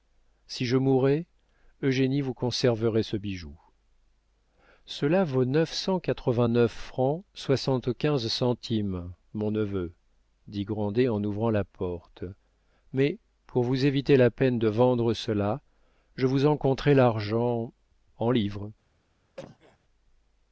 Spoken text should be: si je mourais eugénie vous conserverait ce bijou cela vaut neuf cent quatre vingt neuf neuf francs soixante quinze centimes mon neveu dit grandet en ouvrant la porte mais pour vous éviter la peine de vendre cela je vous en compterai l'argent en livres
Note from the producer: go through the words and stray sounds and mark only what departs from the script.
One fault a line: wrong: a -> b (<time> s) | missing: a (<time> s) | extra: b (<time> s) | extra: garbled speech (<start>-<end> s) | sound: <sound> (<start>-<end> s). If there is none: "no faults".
missing: neuf (6.7 s)
sound: cough (19.4-19.8 s)